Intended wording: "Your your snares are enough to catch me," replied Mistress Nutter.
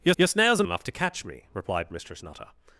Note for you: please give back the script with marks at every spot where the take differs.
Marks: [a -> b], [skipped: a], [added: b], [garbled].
"Your your snares are enough to catch me," replied Mistress Nutter.